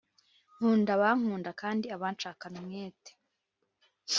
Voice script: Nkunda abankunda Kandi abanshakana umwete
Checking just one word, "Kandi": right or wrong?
right